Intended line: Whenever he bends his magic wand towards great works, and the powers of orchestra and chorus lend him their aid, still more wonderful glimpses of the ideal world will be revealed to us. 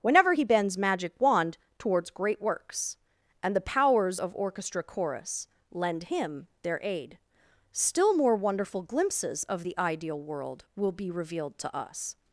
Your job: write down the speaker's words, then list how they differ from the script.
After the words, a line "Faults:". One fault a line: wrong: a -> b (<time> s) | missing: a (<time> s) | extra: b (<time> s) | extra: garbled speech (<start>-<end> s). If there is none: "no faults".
Whenever he bends magic wand towards great works, and the powers of orchestra chorus lend him their aid, still more wonderful glimpses of the ideal world will be revealed to us.
Faults:
missing: his (0.8 s)
missing: and (4.8 s)